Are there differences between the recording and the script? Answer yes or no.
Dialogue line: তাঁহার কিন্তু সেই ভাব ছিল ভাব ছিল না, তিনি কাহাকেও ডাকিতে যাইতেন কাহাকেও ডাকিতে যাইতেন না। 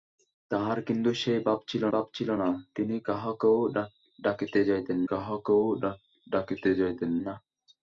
no